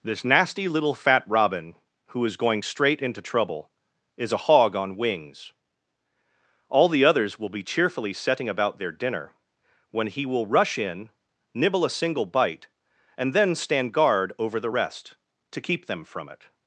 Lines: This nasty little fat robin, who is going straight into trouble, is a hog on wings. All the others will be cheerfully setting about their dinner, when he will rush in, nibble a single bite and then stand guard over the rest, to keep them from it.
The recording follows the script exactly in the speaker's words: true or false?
true